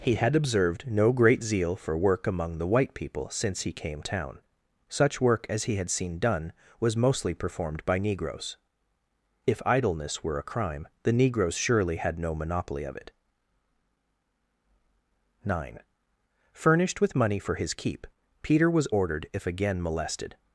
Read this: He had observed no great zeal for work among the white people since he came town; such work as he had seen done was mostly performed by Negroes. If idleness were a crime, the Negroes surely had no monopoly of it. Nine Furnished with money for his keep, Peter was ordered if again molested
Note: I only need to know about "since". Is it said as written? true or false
true